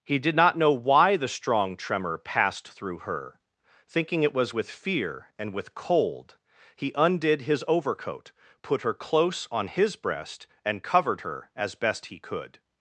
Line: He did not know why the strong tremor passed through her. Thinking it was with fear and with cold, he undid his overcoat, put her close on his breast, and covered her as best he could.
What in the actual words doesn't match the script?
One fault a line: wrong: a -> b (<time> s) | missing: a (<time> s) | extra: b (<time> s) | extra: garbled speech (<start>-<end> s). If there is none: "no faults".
no faults